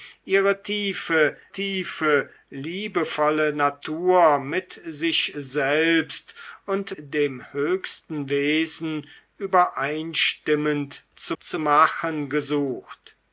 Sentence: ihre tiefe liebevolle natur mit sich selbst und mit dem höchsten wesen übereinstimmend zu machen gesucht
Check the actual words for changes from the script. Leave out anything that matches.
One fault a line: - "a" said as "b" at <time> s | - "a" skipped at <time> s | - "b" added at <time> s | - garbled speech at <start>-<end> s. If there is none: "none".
- "tiefe" added at 1.5 s
- "mit" skipped at 7.0 s
- "zu" added at 11.4 s